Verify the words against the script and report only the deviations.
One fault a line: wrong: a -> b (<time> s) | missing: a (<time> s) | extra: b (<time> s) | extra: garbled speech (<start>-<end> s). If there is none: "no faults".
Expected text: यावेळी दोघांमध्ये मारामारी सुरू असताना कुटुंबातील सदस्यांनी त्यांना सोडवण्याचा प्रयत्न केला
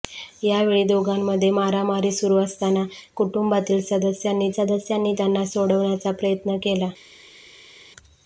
extra: सदस्यांनी (4.5 s)